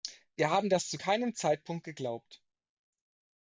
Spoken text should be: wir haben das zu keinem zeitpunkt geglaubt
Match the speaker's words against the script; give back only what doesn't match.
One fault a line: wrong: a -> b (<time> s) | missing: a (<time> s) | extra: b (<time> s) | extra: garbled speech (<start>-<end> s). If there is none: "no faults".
no faults